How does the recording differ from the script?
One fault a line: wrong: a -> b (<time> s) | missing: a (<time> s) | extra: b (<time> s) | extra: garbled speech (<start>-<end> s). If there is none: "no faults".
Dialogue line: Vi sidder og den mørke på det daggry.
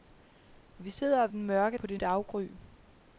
no faults